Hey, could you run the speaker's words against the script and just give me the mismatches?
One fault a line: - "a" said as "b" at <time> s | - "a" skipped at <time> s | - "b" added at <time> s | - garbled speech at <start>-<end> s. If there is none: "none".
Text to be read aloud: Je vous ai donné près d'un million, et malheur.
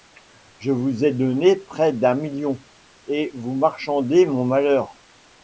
- "vous marchandez mon" added at 3.3 s